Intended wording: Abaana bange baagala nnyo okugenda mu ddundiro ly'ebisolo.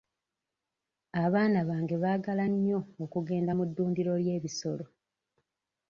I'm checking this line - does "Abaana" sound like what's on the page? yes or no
yes